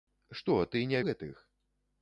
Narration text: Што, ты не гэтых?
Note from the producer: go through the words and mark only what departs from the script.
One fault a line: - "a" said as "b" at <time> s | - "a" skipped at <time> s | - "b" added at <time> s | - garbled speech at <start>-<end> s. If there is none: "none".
none